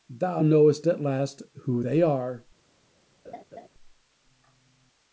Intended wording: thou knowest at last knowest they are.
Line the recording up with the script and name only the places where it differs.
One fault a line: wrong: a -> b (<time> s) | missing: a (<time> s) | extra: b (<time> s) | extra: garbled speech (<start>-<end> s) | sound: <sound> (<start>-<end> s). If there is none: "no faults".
wrong: knowest -> who (1.6 s)
sound: laugh (3.2-3.7 s)